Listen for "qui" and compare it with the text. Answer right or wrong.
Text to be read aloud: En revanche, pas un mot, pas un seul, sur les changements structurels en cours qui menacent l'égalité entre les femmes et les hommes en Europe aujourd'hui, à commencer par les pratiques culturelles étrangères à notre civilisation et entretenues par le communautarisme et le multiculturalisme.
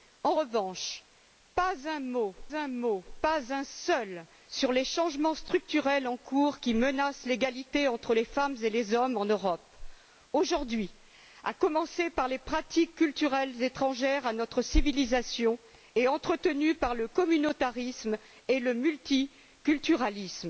right